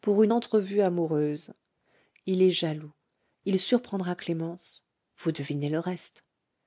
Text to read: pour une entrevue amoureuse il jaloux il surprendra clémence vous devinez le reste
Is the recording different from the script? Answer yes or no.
yes